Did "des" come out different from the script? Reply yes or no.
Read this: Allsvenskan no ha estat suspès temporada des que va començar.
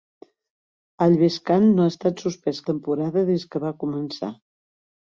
no